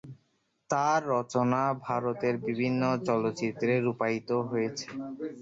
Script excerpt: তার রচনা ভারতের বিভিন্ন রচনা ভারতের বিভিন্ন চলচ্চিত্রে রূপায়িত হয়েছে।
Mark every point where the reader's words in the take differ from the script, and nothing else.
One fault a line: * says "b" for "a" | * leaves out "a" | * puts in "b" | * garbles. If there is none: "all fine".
* leaves out "রচনা ভারতের বিভিন্ন"